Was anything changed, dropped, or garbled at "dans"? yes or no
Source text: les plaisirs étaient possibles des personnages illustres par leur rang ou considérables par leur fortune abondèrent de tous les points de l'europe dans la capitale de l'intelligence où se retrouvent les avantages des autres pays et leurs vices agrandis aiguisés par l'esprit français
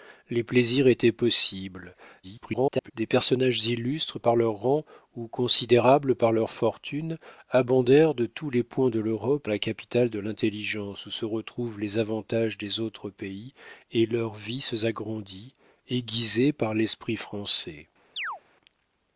yes